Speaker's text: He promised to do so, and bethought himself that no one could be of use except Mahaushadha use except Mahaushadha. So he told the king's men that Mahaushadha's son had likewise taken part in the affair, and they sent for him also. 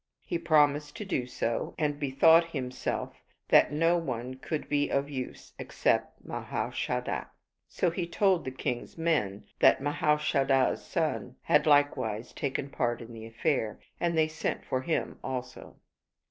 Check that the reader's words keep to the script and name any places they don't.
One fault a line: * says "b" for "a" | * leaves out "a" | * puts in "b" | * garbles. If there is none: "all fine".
* leaves out "use except Mahaushadha"